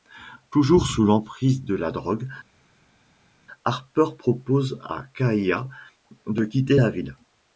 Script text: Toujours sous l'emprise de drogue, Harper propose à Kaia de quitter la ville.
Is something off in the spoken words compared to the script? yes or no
yes